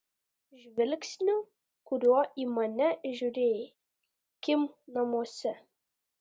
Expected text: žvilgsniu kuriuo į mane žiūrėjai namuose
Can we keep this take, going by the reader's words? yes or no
no